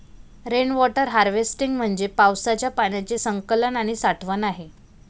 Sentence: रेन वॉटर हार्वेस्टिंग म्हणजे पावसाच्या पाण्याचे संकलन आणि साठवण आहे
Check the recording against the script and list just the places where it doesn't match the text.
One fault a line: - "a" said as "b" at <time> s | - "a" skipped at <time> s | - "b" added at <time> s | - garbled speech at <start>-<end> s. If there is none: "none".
none